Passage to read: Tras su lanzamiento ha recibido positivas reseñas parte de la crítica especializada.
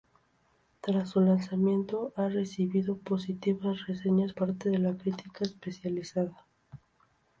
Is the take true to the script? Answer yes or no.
yes